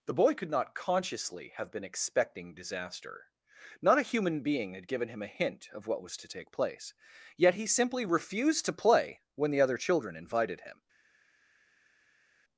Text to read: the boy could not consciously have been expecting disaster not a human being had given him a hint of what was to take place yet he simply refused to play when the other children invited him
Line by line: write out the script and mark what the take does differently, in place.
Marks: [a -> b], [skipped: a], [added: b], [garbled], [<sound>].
the boy could not consciously have been expecting disaster not a human being had given him a hint of what was to take place yet he simply refused to play when the other children invited him